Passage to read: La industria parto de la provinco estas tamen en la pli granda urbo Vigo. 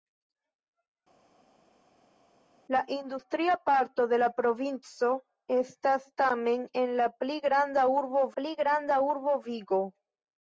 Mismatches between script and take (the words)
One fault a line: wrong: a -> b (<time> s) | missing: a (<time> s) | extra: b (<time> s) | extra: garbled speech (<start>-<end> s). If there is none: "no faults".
extra: pli granda urbo (8.4 s)